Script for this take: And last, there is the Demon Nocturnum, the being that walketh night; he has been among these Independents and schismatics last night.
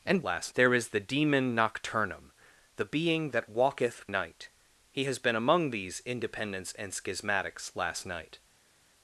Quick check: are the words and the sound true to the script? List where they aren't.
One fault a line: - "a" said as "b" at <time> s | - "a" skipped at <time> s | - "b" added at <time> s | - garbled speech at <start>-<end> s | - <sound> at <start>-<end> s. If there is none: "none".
none